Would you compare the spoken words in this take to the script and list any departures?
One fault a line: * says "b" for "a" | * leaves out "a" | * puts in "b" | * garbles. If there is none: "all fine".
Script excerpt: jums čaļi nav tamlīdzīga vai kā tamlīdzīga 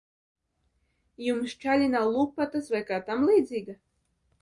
* says "lupatas" for "tamlīdzīga"